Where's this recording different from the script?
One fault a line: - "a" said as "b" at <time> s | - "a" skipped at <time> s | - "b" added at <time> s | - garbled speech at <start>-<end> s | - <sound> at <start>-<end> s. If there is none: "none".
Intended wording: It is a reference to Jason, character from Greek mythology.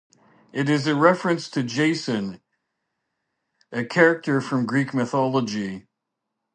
- "a" added at 3.7 s